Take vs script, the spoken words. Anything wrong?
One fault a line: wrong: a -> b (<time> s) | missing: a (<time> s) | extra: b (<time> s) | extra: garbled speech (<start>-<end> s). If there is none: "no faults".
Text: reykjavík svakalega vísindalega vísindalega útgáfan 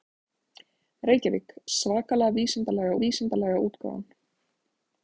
no faults